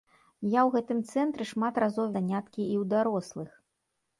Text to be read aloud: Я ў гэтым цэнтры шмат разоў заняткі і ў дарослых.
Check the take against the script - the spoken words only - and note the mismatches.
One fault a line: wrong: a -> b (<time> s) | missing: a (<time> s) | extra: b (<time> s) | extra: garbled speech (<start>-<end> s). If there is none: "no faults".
no faults